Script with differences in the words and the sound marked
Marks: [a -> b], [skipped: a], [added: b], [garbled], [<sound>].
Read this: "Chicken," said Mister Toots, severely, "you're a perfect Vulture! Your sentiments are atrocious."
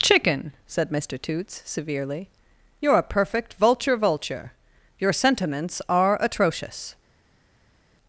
"Chicken," said Mister Toots, severely, "you're a perfect Vulture! [added: Vulture] Your sentiments are atrocious."